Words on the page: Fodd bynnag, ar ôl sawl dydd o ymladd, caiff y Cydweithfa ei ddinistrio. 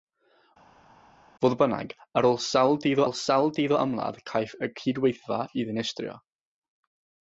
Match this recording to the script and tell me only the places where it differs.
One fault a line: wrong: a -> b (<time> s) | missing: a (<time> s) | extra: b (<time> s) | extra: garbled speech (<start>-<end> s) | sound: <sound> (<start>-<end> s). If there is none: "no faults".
extra: ôl sawl dydd (3.0 s)